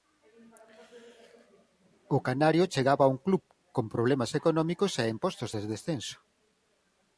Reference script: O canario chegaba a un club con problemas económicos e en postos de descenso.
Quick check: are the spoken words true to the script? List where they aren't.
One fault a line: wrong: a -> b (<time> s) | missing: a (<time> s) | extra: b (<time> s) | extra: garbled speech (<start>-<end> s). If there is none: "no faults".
no faults